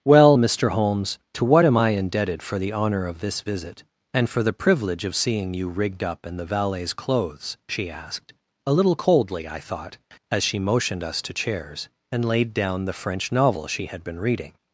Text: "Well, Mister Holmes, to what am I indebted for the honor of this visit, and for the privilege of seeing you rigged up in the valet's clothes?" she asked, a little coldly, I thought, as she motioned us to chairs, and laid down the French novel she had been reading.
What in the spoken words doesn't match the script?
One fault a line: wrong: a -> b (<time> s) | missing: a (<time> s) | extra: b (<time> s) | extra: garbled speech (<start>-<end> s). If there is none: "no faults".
no faults